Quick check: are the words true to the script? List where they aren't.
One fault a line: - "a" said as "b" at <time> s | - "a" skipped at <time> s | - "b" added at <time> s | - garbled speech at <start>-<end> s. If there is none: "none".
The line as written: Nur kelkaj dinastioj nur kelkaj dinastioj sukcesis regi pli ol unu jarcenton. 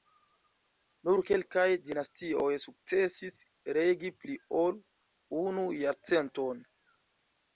- "nur kelkaj dinastioj" skipped at 2.5 s